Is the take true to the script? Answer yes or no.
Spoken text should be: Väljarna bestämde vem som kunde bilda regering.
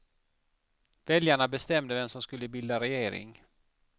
no